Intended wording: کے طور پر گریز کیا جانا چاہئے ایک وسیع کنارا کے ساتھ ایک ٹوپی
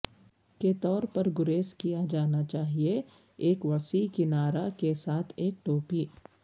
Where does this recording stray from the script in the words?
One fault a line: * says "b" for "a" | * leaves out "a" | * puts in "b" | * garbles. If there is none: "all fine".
all fine